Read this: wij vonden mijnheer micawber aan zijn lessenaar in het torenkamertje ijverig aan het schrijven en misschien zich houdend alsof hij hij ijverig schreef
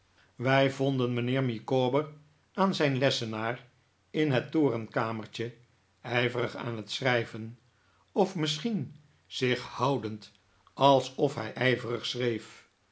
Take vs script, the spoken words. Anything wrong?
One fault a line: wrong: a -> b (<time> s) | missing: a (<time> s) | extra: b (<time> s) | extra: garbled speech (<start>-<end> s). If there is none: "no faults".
wrong: en -> of (8.1 s)
missing: hij (11.6 s)